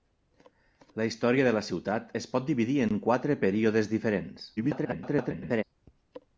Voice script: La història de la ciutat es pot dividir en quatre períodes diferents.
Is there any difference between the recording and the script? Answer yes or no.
yes